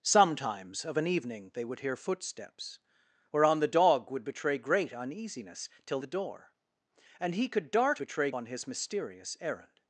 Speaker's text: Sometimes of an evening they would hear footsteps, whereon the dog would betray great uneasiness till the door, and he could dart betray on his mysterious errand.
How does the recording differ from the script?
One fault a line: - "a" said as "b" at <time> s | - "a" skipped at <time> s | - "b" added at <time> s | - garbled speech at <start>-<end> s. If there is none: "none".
none